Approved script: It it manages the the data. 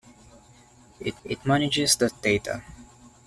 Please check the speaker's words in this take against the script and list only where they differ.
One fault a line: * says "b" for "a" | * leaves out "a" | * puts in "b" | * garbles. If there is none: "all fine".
all fine